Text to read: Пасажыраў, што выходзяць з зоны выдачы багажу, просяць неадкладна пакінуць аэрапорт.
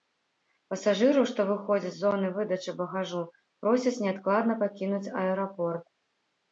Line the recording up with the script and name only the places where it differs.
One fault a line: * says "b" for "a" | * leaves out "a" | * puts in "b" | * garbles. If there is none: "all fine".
all fine